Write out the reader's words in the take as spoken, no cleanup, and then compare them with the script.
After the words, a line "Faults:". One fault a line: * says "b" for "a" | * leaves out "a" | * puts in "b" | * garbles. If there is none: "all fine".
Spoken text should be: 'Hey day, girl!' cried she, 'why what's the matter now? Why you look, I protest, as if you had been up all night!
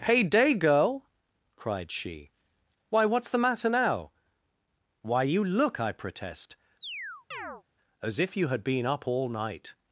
'Hey day, girl!' cried she, 'why what's the matter now? Why you look, I protest, as if you had been up all night!
Faults:
all fine